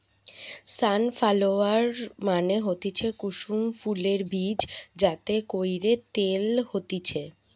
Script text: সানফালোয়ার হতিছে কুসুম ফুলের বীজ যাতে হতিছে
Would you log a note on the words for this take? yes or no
yes